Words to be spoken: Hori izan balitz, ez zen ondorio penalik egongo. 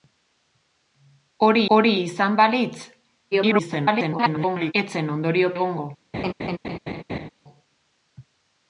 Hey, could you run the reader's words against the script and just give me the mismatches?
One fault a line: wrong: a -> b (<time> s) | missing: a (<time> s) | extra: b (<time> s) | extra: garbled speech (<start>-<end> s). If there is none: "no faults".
extra: hori (1.8 s)
extra: garbled speech (3.3-4.7 s)
missing: penalik (5.5 s)